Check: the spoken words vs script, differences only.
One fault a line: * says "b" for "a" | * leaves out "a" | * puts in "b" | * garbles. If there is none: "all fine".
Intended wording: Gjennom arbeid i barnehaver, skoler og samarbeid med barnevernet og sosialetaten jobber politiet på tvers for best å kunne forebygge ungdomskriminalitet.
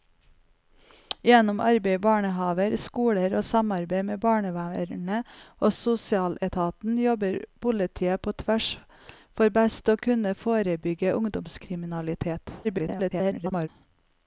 * garbles